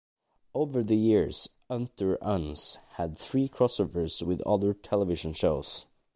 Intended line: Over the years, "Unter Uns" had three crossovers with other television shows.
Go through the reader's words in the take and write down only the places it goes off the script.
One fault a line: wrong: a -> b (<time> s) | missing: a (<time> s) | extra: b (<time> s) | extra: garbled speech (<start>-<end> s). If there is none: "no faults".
no faults